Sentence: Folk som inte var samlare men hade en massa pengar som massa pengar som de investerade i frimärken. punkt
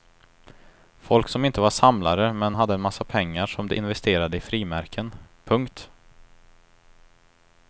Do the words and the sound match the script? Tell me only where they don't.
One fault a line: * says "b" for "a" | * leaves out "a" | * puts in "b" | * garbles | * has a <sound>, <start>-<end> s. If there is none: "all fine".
* leaves out "massa pengar som"